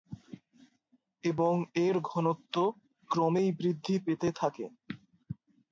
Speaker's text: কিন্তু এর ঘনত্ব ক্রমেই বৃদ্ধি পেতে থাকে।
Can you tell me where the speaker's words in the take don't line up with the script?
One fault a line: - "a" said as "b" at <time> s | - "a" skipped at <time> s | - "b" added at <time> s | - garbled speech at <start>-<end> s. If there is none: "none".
- "কিন্তু" said as "এবং" at 1.2 s